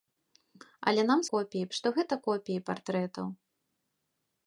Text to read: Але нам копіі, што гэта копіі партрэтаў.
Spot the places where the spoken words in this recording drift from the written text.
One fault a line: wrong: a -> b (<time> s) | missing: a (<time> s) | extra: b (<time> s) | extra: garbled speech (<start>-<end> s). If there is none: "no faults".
no faults